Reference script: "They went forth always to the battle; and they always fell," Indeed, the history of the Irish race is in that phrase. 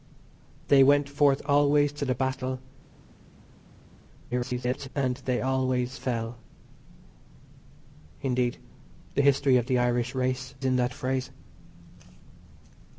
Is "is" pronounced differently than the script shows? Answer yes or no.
yes